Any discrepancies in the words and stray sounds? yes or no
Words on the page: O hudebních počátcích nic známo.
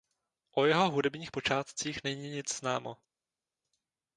yes